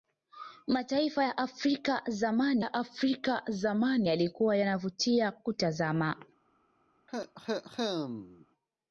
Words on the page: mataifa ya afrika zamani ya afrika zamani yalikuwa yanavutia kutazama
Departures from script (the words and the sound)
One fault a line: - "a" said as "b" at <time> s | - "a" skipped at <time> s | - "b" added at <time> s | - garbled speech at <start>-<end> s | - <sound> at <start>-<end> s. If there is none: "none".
- cough at 7.1-8.5 s